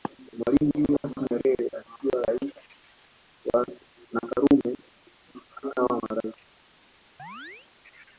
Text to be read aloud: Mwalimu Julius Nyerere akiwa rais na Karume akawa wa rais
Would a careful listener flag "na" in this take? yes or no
no